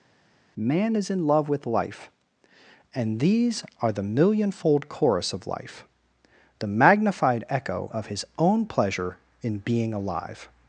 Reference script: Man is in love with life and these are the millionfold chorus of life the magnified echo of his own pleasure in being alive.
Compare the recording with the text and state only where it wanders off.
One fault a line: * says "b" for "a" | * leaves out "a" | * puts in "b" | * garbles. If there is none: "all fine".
all fine